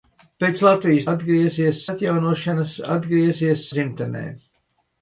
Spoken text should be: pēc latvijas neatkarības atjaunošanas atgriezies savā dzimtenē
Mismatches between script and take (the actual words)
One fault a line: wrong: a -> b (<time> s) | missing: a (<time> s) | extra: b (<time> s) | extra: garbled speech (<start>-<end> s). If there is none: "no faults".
wrong: neatkarības -> atgriezies (1.1 s)
missing: savā (3.7 s)